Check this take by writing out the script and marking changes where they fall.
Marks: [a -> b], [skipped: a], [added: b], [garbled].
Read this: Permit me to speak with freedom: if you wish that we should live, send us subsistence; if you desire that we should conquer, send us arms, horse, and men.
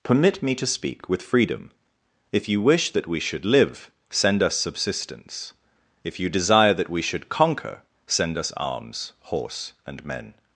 Permit me to speak with freedom: if you wish that we should live, send us subsistence; if you desire that we should conquer, send us arms, horse, and men.